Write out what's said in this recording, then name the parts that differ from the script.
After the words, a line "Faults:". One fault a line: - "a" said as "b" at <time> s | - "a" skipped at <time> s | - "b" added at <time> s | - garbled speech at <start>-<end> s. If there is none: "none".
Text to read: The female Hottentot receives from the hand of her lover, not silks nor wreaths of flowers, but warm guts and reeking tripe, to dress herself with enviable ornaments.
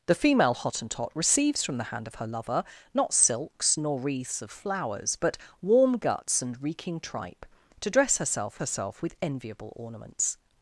The female Hottentot receives from the hand of her lover, not silks nor wreaths of flowers, but warm guts and reeking tripe, to dress herself herself with enviable ornaments.
Faults:
- "herself" added at 8.6 s